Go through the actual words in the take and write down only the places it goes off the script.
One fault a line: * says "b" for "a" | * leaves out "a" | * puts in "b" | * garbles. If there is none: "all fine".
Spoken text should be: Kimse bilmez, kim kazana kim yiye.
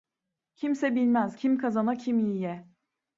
all fine